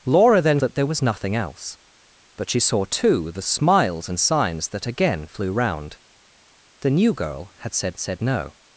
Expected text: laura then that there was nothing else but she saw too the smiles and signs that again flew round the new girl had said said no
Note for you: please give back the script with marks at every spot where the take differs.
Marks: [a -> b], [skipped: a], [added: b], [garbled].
laura then that there was nothing else but she saw too the smiles and signs that again flew round the new girl had said said no